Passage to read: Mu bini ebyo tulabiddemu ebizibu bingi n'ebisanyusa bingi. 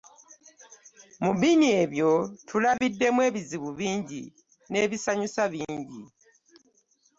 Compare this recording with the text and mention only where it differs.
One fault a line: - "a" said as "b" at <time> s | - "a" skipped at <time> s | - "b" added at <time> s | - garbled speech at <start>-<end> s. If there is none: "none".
none